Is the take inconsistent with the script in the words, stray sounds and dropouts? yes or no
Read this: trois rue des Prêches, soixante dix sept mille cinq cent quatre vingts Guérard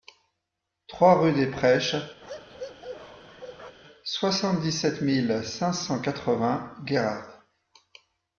yes